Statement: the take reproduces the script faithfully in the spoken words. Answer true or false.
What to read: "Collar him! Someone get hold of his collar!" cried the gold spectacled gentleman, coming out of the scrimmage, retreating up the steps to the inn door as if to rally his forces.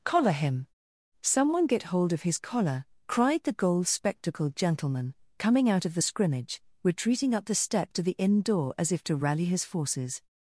false